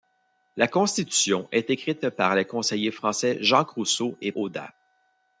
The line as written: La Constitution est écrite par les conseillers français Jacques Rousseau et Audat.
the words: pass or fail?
pass